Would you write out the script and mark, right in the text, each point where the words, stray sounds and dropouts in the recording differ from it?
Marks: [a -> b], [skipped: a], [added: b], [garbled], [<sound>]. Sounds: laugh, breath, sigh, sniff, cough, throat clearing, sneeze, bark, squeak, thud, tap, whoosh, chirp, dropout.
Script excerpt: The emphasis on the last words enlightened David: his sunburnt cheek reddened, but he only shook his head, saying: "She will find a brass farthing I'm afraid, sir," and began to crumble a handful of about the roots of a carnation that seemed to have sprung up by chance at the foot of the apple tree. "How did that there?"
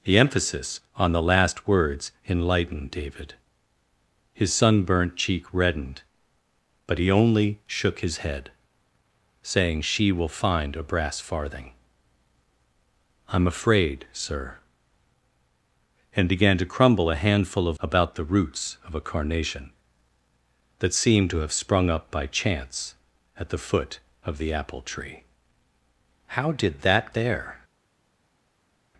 The emphasis on the last words enlightened David: his sunburnt cheek reddened, but he only shook his head, saying: "She will find a brass farthing I'm afraid, sir," and began to crumble a handful of about the roots of a carnation that seemed to have sprung up by chance at the foot of the apple tree. "How did that there?"